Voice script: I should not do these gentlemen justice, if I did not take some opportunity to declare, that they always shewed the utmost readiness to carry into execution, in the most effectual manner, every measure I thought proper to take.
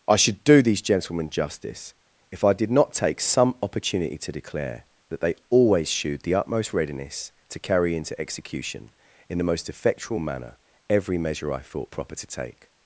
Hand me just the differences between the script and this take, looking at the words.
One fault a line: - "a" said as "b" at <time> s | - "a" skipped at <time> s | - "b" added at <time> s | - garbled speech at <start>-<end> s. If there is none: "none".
- "not" skipped at 0.4 s